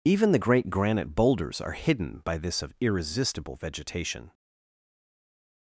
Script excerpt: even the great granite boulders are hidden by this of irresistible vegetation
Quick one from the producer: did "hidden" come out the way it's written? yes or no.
yes